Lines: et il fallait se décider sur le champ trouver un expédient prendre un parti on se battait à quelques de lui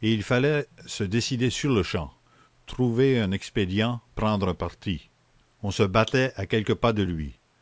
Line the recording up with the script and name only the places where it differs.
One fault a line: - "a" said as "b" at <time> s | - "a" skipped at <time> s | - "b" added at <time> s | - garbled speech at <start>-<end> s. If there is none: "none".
- "pas" added at 6.7 s